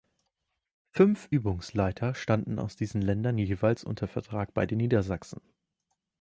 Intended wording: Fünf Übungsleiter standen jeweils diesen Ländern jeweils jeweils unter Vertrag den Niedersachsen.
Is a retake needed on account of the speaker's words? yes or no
yes